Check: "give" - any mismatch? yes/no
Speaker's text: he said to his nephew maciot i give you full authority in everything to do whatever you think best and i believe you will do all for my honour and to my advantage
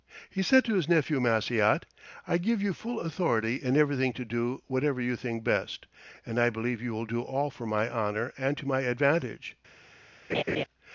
no